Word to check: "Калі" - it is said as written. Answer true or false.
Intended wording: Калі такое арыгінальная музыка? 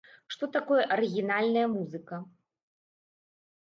false